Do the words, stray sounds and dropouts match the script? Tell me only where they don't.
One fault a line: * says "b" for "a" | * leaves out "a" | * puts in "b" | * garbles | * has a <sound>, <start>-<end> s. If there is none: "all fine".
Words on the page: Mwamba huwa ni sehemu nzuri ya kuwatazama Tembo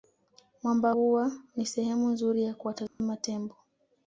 * has a dropout, 2.9-3.0 s